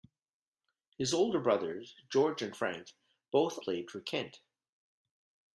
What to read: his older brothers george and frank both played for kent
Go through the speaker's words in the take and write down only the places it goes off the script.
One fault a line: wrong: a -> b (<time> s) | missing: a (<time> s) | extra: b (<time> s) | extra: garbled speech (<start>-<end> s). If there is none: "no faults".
no faults